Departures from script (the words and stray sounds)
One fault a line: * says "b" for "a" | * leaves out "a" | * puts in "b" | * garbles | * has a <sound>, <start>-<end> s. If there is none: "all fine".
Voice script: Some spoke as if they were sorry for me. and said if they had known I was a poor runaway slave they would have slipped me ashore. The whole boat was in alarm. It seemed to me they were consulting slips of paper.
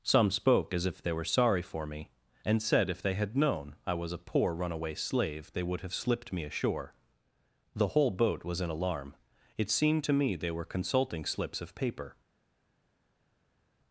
all fine